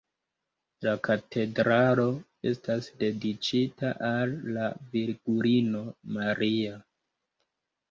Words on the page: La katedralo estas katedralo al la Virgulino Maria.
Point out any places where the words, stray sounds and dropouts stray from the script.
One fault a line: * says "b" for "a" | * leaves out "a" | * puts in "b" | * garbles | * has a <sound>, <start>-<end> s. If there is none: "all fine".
* says "dediĉita" for "katedralo"